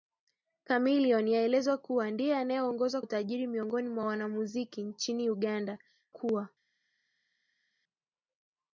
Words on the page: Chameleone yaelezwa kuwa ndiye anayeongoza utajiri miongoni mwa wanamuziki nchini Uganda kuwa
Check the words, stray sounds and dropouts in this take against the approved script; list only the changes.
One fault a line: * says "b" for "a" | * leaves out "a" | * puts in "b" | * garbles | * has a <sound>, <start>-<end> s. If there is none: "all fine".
all fine